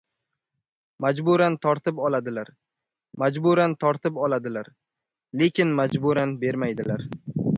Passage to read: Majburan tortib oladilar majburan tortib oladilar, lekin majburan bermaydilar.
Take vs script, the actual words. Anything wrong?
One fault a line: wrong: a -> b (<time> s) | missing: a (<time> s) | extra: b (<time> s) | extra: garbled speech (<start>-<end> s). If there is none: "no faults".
no faults